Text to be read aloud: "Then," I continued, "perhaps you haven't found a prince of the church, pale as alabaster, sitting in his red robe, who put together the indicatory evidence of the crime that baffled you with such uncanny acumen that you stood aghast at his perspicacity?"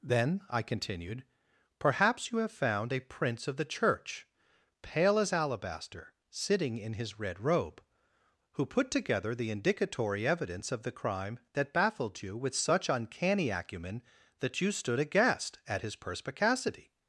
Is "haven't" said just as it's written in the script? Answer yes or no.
no